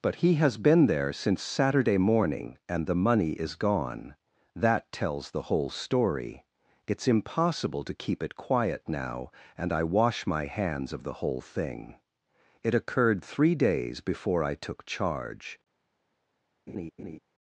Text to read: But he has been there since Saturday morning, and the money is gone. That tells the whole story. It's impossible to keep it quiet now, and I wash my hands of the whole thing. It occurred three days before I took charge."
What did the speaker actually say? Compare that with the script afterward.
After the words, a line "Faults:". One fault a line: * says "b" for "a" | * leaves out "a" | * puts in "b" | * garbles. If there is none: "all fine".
But he has been there since Saturday morning, and the money is gone. That tells the whole story. It's impossible to keep it quiet now, and I wash my hands of the whole thing. It occurred three days before I took charge."
Faults:
all fine